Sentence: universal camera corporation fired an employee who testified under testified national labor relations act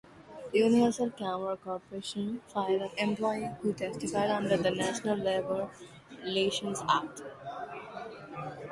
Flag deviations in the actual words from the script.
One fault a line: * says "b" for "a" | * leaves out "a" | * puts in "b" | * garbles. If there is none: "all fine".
* says "the" for "testified"